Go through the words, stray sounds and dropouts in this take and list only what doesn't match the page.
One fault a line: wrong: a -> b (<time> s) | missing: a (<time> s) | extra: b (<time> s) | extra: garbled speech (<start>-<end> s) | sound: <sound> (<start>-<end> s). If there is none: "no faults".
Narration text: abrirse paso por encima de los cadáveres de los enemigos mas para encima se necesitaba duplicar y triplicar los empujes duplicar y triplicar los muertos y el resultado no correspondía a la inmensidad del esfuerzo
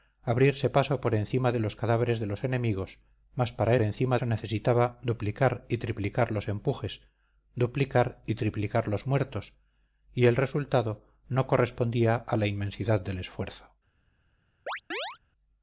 sound: chirp (14.7-15.2 s)